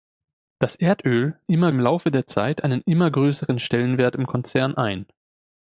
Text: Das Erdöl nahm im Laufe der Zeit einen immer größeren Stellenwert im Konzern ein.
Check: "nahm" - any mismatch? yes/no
yes